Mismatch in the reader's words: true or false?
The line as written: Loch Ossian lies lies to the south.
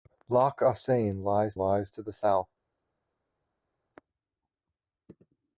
false